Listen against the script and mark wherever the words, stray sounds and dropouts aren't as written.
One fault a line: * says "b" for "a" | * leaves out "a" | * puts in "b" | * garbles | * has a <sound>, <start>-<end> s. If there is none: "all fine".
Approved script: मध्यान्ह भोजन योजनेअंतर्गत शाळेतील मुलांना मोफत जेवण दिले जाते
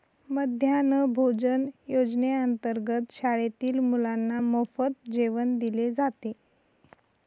all fine